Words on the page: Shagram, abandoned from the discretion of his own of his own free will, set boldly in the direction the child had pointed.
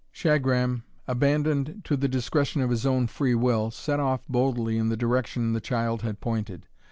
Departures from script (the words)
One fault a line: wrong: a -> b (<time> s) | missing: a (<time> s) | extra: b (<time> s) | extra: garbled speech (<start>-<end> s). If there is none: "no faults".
wrong: from -> to (1.8 s)
missing: of his own (3.0 s)
extra: off (4.0 s)